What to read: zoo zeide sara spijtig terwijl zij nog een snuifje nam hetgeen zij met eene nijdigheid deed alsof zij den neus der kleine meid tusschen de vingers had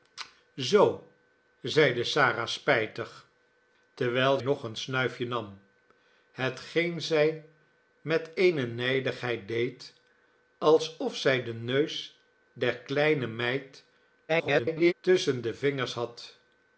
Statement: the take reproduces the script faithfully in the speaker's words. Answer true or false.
false